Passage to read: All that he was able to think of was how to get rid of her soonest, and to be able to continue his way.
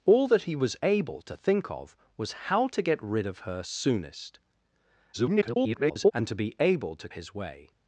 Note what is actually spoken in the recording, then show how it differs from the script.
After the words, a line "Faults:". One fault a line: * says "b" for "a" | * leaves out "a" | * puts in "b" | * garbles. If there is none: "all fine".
All that he was able to think of was how to get rid of her soonest, [garbled] and to be able to his way.
Faults:
* garbles
* leaves out "continue"